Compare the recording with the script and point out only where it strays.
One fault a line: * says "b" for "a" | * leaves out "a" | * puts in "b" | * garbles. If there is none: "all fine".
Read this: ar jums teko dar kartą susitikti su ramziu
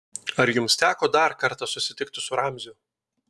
all fine